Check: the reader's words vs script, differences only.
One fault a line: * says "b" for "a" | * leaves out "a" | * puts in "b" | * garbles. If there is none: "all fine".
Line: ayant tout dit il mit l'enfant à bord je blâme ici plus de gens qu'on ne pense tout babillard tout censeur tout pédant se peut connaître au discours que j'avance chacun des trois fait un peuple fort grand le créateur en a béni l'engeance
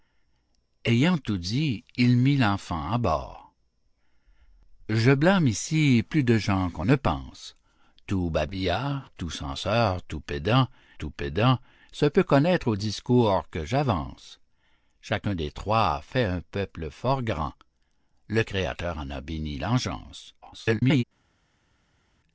* puts in "tout pédant"
* garbles